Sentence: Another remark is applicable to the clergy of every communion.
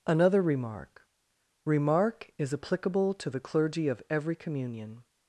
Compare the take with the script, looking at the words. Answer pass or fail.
fail